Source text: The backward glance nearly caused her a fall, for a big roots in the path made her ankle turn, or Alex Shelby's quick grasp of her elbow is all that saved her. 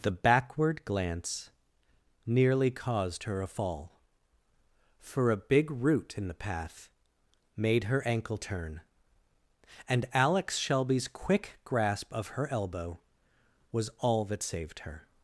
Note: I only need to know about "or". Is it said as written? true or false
false